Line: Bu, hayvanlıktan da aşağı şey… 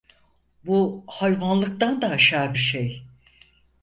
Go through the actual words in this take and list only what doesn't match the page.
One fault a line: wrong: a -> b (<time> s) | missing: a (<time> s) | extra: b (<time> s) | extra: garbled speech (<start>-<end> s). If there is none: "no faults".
no faults